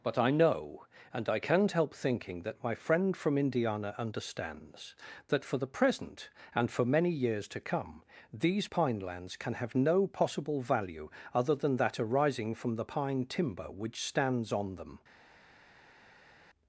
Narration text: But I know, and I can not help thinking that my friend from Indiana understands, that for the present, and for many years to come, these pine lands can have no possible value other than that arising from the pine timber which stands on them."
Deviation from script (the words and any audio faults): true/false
false